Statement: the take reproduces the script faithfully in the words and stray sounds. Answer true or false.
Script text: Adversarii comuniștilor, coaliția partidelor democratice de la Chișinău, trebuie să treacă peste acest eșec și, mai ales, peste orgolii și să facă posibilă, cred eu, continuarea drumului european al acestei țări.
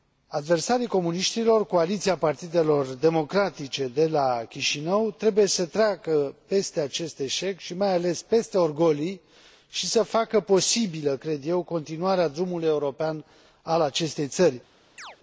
false